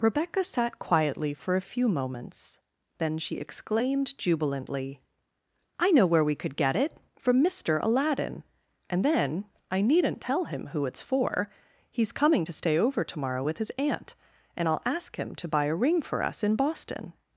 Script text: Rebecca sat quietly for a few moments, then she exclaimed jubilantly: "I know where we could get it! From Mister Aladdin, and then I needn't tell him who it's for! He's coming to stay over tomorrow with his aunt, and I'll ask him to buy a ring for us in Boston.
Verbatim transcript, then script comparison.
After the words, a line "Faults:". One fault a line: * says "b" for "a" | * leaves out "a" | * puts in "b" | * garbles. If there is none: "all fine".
Rebecca sat quietly for a few moments, then she exclaimed jubilantly: "I know where we could get it! From Mister Aladdin, and then I needn't tell him who it's for! He's coming to stay over tomorrow with his aunt, and I'll ask him to buy a ring for us in Boston.
Faults:
all fine